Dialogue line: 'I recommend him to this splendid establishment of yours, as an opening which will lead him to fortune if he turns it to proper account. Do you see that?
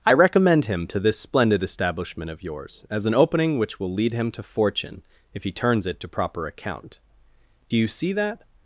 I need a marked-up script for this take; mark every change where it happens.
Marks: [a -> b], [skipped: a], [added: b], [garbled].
'I recommend him to this splendid establishment of yours, as an opening which will lead him to fortune if he turns it to proper account. Do you see that?